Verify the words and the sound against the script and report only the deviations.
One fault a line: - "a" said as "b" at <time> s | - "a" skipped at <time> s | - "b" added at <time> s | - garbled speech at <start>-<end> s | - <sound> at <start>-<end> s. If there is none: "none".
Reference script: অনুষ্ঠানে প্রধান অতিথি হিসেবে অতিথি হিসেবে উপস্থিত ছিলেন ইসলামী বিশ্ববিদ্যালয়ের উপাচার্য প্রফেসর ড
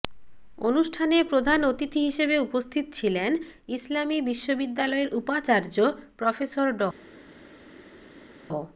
- "অতিথি হিসেবে" skipped at 2.4 s